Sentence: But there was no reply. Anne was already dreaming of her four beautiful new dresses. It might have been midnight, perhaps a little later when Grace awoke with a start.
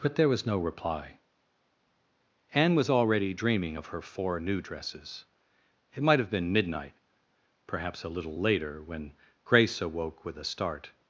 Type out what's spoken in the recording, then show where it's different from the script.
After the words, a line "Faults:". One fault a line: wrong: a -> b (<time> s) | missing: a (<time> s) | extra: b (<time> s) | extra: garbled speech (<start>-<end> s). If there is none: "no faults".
But there was no reply. Anne was already dreaming of her four new dresses. It might have been midnight, perhaps a little later when Grace awoke with a start.
Faults:
missing: beautiful (4.4 s)